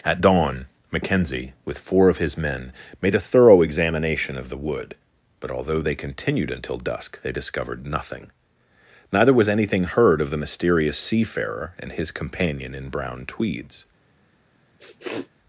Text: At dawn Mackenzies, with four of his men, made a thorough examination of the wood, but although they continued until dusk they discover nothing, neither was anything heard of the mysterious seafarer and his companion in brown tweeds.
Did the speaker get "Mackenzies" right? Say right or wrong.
wrong